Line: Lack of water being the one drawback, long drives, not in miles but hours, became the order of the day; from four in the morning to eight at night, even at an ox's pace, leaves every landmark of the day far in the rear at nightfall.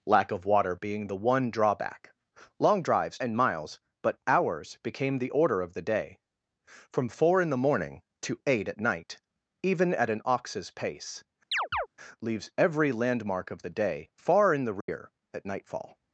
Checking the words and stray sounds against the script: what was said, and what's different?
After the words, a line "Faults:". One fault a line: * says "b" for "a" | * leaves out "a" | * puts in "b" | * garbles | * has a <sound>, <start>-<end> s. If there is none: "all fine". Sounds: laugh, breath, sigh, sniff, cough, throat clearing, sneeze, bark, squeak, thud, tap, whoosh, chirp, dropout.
Lack of water being the one drawback, long drives, in miles but hours, became the order of the day; from four in the morning to eight at night, even at an ox's pace, leaves every landmark of the day far in the rear at nightfall.
Faults:
* leaves out "not"
* has a chirp, 11.5-11.9 s
* has a dropout, 14.8-14.9 s